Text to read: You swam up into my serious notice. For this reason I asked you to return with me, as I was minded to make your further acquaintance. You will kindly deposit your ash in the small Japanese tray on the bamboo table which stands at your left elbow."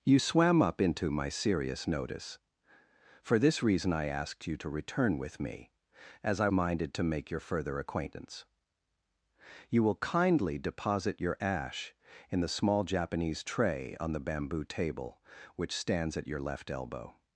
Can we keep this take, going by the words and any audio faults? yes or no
no